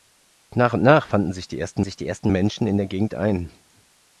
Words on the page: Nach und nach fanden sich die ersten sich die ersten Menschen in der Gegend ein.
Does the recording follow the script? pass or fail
pass